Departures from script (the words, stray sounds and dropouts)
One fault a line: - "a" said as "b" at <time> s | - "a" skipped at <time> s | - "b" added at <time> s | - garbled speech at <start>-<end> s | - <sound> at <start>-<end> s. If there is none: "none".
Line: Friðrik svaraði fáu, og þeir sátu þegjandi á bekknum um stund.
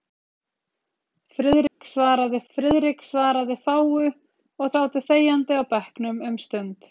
- dropout at 1.7-1.8 s
- "friðrik svaraði" added at 2.5 s
- "þeir" skipped at 4.8 s